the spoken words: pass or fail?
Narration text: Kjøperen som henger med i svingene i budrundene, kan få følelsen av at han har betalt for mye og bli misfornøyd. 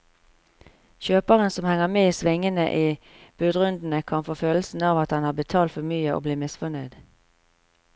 pass